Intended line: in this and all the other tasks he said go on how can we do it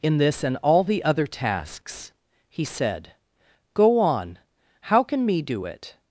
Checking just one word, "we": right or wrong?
wrong